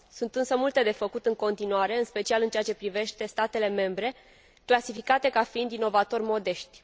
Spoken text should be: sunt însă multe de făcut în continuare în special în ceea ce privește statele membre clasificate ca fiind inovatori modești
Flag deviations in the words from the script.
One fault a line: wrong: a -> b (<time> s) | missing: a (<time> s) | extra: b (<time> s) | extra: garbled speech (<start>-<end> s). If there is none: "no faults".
no faults